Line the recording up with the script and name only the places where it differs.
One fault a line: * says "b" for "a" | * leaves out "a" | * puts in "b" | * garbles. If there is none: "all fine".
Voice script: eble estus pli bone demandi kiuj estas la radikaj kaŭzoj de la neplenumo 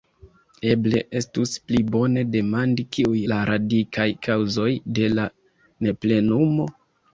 * leaves out "estas"